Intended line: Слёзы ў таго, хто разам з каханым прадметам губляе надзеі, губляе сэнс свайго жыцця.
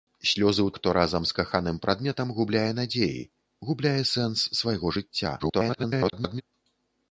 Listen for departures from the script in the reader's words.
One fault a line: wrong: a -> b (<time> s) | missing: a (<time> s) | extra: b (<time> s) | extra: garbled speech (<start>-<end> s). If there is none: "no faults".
missing: таго (0.7 s)
extra: garbled speech (5.4-6.4 s)